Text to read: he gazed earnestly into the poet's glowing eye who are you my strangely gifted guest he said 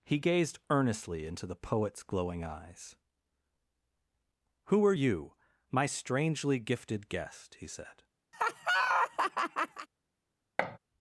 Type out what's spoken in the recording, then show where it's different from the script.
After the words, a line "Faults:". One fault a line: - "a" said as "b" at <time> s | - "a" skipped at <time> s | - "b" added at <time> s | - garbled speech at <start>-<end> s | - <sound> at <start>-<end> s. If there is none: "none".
he gazed earnestly into the poet's glowing eyes who are you my strangely gifted guest he said
Faults:
- "eye" said as "eyes" at 2.4 s
- laugh at 8.3-9.9 s
- thud at 10.6-10.8 s